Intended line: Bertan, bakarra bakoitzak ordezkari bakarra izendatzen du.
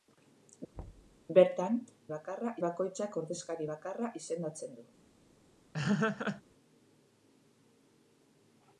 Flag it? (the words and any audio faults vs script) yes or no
yes